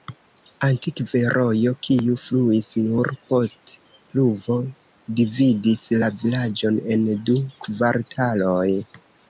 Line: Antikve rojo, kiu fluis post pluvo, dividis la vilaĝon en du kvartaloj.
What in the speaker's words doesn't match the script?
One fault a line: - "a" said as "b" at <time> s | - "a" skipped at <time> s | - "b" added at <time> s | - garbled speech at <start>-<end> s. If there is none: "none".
- "nur" added at 2.9 s